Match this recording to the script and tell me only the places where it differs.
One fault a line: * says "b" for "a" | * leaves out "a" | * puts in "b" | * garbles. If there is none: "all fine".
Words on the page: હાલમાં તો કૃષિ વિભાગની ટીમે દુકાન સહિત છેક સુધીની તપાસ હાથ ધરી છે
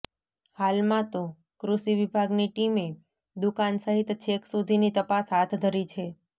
all fine